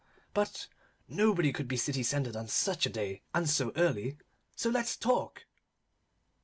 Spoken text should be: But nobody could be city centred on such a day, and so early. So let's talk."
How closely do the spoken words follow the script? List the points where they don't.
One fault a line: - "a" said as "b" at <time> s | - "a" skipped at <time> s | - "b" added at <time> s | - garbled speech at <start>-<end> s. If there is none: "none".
none